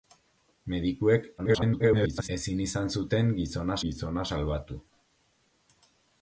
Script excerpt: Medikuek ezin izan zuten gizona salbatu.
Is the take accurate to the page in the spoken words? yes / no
no